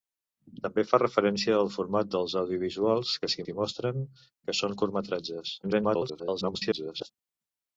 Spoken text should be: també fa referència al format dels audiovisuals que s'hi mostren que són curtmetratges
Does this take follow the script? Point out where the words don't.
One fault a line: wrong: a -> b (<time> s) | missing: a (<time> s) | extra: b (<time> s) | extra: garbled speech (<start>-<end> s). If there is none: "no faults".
extra: s'hi (3.4 s)
extra: garbled speech (5.6-7.1 s)